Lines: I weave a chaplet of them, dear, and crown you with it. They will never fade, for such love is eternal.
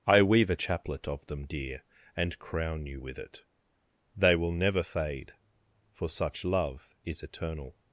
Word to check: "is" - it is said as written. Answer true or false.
true